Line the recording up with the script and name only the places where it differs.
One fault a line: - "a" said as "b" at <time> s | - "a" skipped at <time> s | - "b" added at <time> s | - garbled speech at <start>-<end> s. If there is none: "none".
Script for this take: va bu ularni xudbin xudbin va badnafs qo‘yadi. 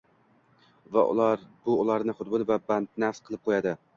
- "xudbin" skipped at 2.5 s
- "qilib" added at 3.3 s